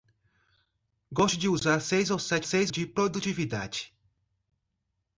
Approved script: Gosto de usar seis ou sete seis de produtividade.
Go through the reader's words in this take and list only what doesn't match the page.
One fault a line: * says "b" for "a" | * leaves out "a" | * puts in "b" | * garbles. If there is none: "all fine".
all fine